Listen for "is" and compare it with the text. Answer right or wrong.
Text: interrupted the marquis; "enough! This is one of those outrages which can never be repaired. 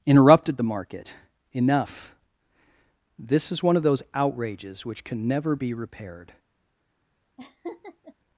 right